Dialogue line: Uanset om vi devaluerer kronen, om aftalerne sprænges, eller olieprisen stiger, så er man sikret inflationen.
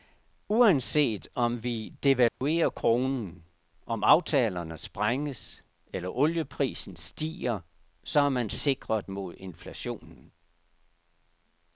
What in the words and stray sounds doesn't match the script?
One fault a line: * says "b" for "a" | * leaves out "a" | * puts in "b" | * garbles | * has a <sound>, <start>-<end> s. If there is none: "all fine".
* has a dropout, 2.3-2.4 s
* puts in "mod"